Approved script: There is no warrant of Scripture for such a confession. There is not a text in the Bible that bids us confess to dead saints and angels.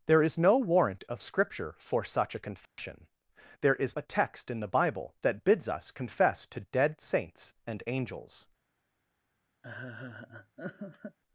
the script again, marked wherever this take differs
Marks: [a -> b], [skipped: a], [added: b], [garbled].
There is no warrant of Scripture for such a confession. There is [skipped: not] a text in the Bible that bids us confess to dead saints and angels.